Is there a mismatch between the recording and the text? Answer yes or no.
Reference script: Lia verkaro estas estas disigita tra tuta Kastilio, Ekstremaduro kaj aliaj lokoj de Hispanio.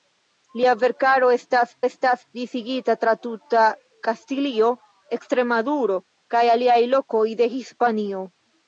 no